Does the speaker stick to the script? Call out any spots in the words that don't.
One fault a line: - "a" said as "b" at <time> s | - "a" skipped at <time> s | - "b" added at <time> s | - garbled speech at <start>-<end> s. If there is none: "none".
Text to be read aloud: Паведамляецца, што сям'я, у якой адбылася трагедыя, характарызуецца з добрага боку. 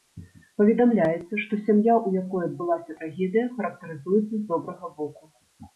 none